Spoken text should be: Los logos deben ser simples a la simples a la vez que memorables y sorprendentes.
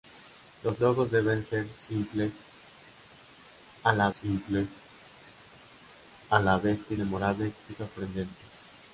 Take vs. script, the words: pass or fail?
pass